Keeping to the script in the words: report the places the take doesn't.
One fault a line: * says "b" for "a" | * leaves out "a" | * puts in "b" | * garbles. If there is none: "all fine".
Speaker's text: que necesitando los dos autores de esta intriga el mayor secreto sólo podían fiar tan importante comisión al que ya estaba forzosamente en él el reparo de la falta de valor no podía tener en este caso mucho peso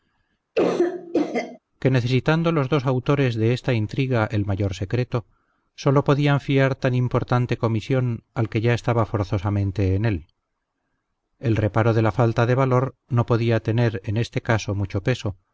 all fine